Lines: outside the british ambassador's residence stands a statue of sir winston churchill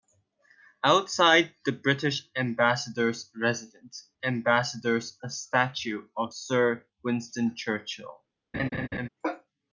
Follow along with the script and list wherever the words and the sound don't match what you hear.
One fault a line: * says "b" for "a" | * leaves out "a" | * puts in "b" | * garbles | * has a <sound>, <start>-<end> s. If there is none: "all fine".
* says "ambassador's" for "stands"
* has a laugh, 8.5-9.1 s